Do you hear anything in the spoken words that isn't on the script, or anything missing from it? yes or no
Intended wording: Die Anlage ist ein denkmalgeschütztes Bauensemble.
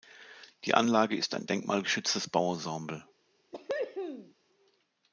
no